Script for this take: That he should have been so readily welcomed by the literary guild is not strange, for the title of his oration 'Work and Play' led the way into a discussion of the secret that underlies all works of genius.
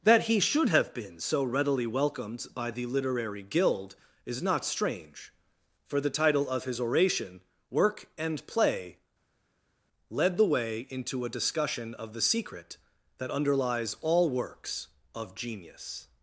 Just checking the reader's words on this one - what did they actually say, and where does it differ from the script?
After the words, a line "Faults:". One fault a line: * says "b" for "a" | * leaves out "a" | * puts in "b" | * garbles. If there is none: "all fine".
That he should have been so readily welcomed by the literary guild is not strange, for the title of his oration 'Work and Play' led the way into a discussion of the secret that underlies all works of genius.
Faults:
all fine